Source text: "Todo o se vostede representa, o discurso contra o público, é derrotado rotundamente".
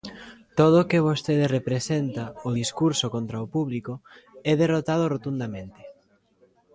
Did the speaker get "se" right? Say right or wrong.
wrong